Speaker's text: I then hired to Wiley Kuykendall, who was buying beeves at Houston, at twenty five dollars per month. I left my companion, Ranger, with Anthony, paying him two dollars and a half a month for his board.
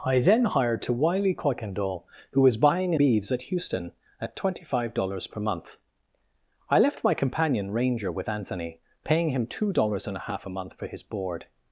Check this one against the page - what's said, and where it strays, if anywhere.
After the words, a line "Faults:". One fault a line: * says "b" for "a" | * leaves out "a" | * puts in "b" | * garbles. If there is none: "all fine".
I then hired to Wiley Kuykendall, who was buying beeves at Houston, at twenty five dollars per month. I left my companion, Ranger, with Anthony, paying him two dollars and a half a month for his board.
Faults:
all fine